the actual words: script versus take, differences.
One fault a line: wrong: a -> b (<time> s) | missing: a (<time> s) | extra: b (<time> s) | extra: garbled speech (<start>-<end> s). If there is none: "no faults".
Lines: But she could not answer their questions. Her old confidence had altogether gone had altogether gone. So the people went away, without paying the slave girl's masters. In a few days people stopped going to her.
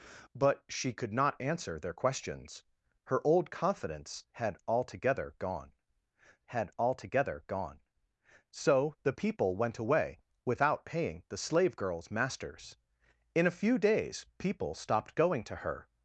no faults